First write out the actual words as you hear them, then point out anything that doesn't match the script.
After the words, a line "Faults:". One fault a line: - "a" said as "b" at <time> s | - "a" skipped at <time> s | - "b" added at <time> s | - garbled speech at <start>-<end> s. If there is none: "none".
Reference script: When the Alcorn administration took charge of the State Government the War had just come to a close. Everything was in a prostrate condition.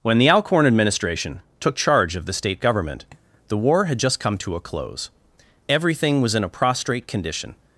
When the Alcorn administration took charge of the State Government the War had just come to a close. Everything was in a prostrate condition.
Faults:
none